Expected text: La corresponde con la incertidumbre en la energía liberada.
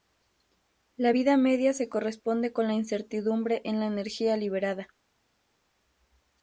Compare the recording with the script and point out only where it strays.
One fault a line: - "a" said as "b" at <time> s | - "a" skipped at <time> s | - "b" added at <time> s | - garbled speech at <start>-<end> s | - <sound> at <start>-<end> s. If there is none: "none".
- "vida media se" added at 1.1 s